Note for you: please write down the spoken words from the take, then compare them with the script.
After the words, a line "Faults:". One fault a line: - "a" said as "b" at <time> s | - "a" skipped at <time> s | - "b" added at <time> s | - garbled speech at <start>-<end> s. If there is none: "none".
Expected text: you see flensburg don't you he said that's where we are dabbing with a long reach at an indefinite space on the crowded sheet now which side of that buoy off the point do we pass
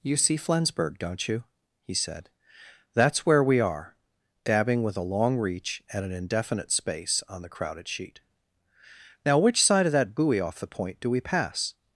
you see flensburg don't you he said that's where we are dabbing with a long reach at an indefinite space on the crowded sheet now which side of that buoy off the point do we pass
Faults:
none